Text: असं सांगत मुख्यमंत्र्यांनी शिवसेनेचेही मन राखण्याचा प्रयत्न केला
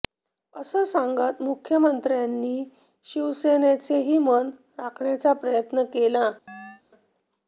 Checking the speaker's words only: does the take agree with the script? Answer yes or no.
yes